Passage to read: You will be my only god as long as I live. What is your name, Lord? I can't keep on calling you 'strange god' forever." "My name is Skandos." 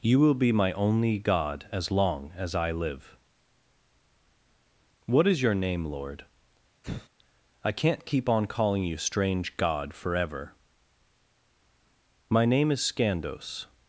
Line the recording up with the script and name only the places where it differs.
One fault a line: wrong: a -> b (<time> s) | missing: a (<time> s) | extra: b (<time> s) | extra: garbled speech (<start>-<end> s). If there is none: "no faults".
no faults